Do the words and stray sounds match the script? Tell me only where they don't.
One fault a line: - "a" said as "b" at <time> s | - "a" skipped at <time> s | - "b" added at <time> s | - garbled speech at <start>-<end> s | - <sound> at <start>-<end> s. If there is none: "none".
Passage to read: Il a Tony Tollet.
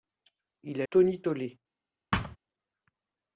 - thud at 2.1-2.4 s